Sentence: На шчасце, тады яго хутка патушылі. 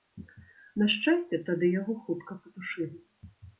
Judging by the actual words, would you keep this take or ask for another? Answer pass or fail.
pass